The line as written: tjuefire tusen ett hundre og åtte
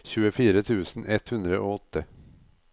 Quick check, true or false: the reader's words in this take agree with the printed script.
true